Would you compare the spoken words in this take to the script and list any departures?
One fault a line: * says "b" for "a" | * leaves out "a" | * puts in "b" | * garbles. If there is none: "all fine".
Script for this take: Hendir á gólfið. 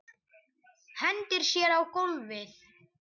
* puts in "sér"